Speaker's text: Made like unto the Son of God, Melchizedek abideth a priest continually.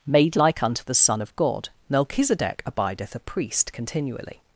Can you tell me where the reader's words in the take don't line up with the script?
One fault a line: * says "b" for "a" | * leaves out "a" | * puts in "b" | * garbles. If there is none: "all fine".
all fine